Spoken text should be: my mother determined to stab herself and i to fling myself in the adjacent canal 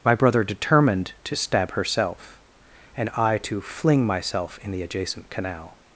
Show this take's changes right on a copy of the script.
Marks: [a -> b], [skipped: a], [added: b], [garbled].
my [mother -> brother] determined to stab herself and i to fling myself in the adjacent canal